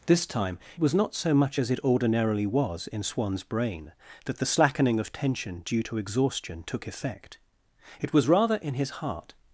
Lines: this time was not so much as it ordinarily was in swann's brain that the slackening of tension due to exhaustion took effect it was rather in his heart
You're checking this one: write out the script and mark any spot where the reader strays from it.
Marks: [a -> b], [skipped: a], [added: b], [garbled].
this time was not so much as it ordinarily was in swann's brain that the slackening of tension due to exhaustion took effect it was rather in his heart